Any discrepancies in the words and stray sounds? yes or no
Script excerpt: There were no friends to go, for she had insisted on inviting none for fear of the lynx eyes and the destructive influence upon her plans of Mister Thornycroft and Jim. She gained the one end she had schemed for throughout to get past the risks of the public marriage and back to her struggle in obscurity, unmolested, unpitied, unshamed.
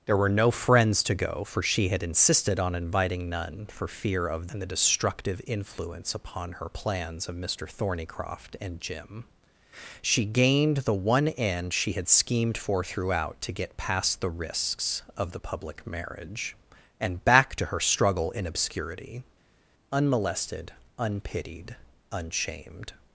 yes